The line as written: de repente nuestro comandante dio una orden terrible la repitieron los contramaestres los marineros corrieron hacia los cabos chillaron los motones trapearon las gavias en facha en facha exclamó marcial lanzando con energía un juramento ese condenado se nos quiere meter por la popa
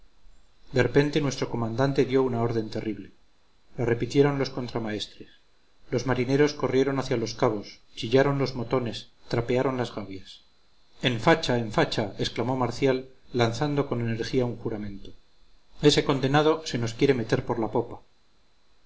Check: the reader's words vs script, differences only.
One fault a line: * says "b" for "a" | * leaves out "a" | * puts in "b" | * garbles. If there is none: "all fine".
all fine